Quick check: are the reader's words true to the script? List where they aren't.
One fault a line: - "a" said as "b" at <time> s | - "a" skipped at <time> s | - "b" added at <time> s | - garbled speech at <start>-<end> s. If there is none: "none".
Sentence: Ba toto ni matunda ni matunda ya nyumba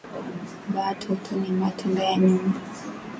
- "ni matunda" skipped at 2.0 s